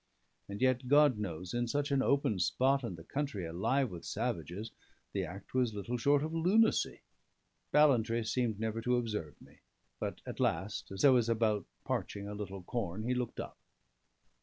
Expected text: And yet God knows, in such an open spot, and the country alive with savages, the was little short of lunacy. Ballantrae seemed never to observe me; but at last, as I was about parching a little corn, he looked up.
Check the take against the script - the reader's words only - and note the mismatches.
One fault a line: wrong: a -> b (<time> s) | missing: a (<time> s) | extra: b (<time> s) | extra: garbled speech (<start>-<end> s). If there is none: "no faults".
extra: act (5.2 s)